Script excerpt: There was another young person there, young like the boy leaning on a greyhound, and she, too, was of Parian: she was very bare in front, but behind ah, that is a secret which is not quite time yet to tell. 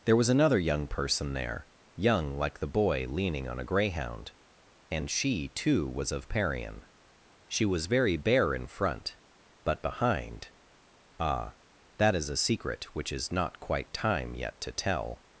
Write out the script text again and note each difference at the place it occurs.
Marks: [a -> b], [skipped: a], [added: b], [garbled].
There was another young person there, young like the boy leaning on a greyhound, and she, too, was of Parian: she was very bare in front, but behind ah, that is a secret which is not quite time yet to tell.